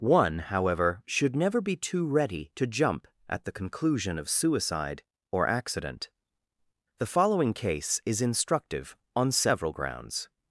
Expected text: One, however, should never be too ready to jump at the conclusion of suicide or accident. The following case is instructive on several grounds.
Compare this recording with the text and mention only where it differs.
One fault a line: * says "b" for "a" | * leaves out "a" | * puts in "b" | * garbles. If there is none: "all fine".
all fine